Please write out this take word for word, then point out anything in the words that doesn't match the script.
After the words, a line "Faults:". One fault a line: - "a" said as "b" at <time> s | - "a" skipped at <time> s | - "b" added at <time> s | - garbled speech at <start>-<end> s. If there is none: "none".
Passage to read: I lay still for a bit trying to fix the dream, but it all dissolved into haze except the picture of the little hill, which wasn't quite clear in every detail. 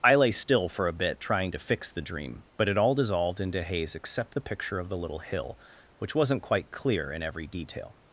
I lay still for a bit trying to fix the dream, but it all dissolved into haze except the picture of the little hill, which wasn't quite clear in every detail.
Faults:
none